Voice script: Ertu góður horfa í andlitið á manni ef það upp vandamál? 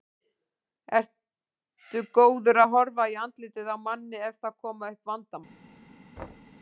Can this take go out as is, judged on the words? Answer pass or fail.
fail